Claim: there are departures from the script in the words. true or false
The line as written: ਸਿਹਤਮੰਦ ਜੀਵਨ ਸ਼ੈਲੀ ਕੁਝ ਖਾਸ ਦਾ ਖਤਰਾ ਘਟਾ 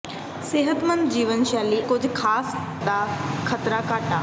false